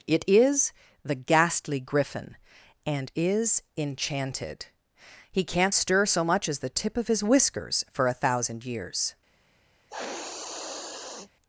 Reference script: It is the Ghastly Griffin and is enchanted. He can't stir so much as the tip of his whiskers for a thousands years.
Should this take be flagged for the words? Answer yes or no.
yes